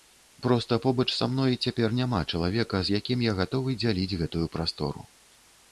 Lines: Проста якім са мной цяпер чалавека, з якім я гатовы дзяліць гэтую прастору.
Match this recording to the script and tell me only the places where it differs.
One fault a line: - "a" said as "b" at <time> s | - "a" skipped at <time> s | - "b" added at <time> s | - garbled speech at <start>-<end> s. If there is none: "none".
- "якім" said as "побач" at 0.8 s
- "няма" added at 2.0 s